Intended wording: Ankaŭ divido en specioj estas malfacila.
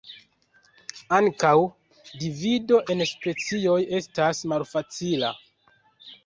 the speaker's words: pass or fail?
pass